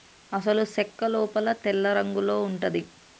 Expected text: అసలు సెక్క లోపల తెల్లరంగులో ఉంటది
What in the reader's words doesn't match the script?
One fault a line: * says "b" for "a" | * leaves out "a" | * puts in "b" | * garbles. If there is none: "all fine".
all fine